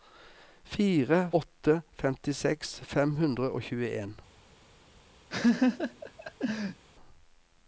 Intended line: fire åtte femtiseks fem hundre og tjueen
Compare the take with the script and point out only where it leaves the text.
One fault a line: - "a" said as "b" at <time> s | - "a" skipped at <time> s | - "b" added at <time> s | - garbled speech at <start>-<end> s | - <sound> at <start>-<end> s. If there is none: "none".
- laugh at 5.3-6.8 s